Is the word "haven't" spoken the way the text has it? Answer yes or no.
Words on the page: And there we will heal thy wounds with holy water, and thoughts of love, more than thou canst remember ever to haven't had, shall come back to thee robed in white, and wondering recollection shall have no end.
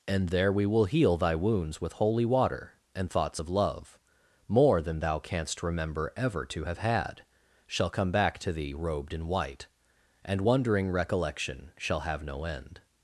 no